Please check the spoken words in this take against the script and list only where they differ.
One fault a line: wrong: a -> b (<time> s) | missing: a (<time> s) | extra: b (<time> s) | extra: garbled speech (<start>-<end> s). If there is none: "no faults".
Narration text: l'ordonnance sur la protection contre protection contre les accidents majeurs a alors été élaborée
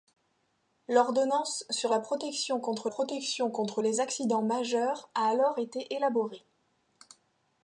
no faults